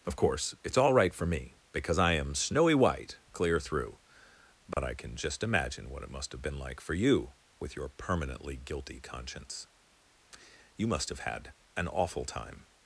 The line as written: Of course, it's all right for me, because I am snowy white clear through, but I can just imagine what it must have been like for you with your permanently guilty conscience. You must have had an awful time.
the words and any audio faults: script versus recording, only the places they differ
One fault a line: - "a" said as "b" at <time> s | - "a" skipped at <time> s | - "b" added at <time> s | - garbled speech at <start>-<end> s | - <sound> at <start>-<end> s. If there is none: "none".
- dropout at 4.7-4.8 s